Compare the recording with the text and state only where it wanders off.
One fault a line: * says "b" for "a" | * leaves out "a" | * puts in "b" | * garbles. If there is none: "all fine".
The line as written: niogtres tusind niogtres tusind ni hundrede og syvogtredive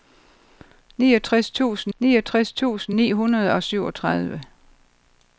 all fine